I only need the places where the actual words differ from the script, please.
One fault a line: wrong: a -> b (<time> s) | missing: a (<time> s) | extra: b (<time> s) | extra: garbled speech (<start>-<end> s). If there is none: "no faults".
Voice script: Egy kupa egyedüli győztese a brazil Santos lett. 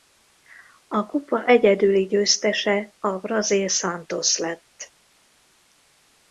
wrong: Egy -> A (0.9 s)